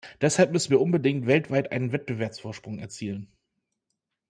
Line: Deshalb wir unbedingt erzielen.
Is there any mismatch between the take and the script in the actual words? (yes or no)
yes